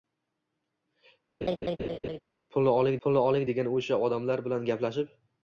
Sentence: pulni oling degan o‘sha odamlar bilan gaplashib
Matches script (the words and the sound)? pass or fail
fail